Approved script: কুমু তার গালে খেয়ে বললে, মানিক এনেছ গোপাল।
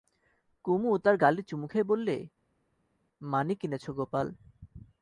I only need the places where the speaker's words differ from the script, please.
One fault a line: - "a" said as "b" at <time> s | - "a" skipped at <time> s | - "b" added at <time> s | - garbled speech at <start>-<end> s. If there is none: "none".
- "চুমু" added at 1.4 s